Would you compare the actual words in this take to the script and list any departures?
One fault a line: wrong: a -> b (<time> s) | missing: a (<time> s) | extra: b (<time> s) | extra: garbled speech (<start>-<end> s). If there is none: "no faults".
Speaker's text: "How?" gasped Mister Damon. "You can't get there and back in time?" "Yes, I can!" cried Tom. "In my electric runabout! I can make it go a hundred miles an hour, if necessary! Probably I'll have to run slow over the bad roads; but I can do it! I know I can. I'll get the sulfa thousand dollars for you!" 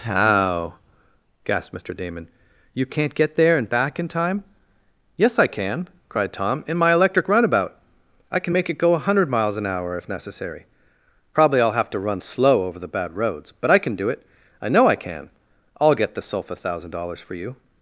no faults